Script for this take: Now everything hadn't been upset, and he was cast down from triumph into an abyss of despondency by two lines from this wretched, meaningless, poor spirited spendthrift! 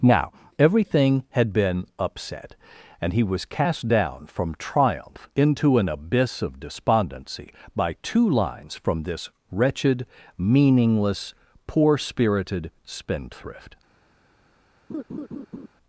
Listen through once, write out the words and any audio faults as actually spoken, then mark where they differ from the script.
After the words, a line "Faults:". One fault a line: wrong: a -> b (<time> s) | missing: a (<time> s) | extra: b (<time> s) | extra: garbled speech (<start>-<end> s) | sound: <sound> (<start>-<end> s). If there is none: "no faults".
Now everything had been upset, and he was cast down from triumph into an abyss of despondency by two lines from this wretched, meaningless, poor spirited spendthrift!
Faults:
wrong: hadn't -> had (1.3 s)
sound: laugh (14.9-15.7 s)